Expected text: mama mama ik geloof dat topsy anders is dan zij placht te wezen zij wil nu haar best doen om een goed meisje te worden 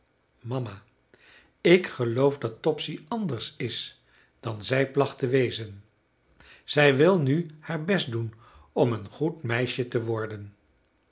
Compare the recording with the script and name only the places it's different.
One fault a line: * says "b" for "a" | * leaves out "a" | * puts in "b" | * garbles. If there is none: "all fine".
* leaves out "mama"